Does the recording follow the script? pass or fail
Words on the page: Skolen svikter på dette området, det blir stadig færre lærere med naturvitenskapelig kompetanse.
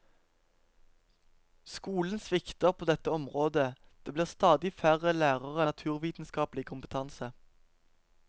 fail